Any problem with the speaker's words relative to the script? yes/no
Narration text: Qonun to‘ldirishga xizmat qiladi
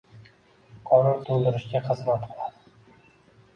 no